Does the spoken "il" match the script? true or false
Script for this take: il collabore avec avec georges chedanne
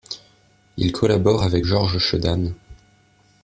true